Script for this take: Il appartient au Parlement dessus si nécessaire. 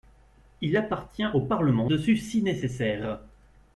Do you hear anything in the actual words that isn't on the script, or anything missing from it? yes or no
no